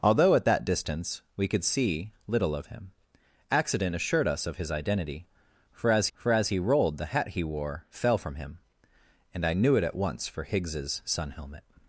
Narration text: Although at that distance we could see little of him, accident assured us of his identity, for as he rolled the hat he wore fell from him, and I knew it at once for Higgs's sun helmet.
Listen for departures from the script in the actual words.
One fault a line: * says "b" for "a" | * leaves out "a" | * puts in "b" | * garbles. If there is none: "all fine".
* puts in "for as"